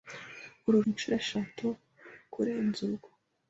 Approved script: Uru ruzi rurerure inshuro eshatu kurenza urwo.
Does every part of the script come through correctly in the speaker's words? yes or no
no